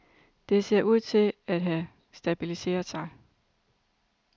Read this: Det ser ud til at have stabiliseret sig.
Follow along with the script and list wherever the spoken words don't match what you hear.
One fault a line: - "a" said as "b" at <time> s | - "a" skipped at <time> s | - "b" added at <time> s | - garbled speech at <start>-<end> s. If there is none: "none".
none